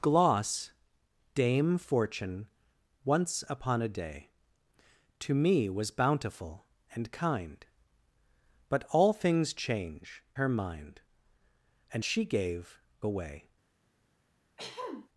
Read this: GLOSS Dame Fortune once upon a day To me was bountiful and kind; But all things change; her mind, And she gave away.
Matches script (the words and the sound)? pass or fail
fail